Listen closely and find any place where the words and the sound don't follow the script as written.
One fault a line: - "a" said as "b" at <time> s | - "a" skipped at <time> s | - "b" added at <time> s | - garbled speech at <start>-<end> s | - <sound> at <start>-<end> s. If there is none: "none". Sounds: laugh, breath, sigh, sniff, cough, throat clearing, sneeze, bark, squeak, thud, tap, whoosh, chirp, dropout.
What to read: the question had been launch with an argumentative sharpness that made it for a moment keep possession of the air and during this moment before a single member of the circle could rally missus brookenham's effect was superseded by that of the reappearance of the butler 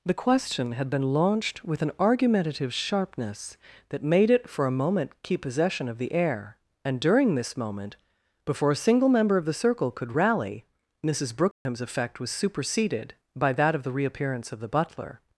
- "launch" said as "launched" at 1.1 s
- dropout at 11.5-11.7 s